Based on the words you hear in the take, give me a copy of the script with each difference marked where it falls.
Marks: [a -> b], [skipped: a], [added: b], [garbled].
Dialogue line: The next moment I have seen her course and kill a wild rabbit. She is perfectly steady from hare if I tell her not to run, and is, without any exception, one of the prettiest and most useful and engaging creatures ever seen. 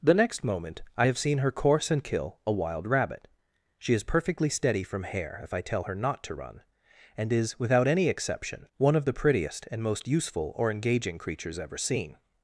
The next moment I have seen her course and kill a wild rabbit. She is perfectly steady from hare if I tell her not to run, and is, without any exception, one of the prettiest and most useful [and -> or] engaging creatures ever seen.